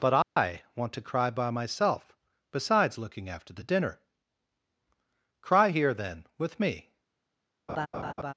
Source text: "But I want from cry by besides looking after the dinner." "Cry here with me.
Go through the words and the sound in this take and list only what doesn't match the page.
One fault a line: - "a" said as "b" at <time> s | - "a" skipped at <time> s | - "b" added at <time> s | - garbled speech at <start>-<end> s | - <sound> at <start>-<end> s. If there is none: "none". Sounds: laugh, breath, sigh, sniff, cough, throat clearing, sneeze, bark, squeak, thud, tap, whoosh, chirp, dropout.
- dropout at 0.2-0.4 s
- "from" said as "to" at 0.9 s
- "myself" added at 1.5 s
- "then" added at 5.9 s
- laugh at 7.7-8.3 s